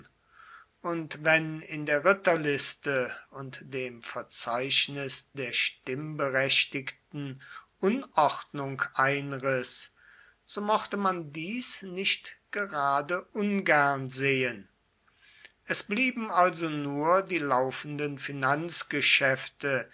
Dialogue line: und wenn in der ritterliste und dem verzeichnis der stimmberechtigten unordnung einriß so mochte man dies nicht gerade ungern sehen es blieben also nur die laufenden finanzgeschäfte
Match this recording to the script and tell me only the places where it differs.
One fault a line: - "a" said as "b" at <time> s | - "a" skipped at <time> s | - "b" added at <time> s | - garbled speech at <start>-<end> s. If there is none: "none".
none